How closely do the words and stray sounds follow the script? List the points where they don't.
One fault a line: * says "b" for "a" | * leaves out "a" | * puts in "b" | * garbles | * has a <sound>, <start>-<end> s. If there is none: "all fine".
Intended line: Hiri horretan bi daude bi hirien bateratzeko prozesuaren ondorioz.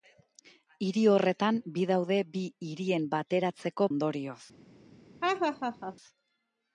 * leaves out "prozesuaren"
* has a laugh, 5.2-6.0 s